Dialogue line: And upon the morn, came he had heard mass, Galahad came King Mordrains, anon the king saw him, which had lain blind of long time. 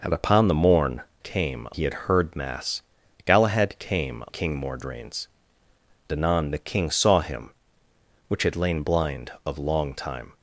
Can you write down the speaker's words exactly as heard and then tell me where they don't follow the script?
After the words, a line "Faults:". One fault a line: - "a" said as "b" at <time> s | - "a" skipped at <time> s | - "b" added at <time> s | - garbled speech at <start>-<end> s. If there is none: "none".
And upon the morn, came he had heard mass, Galahad came King Mordrains, anon the king saw him, which had lain blind of long time.
Faults:
none